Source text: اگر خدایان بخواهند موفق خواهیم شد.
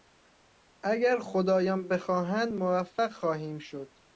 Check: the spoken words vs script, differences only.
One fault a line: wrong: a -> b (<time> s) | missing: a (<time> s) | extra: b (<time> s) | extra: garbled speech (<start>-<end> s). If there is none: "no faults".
no faults